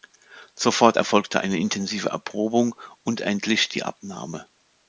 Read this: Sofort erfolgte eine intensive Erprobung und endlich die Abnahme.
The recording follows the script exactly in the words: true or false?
true